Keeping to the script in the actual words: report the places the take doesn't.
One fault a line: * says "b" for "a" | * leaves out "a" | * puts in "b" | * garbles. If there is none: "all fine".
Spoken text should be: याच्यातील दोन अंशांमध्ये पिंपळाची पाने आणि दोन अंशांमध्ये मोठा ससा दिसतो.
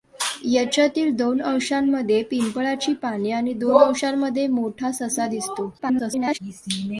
* garbles